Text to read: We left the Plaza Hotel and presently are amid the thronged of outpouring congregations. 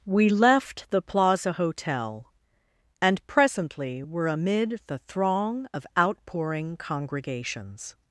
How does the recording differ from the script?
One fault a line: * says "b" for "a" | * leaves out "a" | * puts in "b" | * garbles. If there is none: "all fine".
* says "were" for "are"
* says "throng" for "thronged"